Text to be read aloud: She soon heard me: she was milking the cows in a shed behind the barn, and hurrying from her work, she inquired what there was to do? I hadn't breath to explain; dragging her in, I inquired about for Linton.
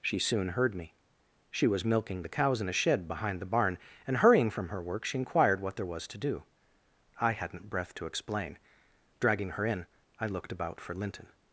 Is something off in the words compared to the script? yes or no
yes